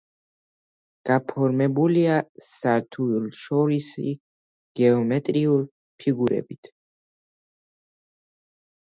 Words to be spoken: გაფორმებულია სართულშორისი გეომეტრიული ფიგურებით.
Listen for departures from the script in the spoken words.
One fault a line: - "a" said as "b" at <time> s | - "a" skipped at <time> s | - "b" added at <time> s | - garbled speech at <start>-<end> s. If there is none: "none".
none